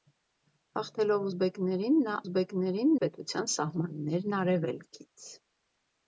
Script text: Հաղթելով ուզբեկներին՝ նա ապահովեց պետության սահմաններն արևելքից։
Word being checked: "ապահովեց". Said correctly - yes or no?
no